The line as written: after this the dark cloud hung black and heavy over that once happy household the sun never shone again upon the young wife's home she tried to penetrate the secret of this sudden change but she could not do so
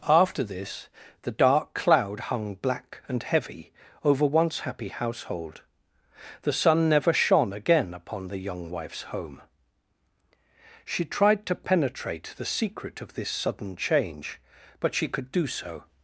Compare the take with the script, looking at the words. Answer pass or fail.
fail